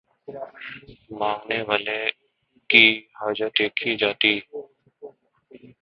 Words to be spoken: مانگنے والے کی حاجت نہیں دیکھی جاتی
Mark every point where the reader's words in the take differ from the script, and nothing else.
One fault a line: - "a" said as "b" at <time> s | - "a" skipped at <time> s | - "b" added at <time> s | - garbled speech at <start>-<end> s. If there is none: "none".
- "نہیں" skipped at 3.6 s